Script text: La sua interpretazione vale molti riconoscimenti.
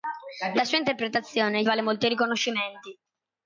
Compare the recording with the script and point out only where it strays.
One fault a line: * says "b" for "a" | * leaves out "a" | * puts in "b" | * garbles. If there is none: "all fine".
all fine